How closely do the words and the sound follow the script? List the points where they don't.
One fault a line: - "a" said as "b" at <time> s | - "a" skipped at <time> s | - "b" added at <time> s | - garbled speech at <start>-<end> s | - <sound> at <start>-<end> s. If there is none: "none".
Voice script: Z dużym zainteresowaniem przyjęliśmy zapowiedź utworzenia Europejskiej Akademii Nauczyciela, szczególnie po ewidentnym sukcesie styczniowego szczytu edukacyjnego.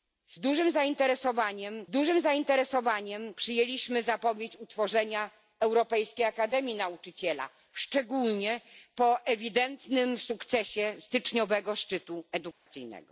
- "dużym zainteresowaniem" added at 1.9 s
- dropout at 12.5-12.7 s